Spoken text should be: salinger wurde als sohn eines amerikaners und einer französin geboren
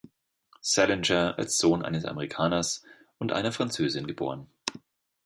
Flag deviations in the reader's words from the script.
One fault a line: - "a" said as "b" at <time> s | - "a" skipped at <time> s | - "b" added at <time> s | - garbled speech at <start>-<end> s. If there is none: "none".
- "wurde" skipped at 1.4 s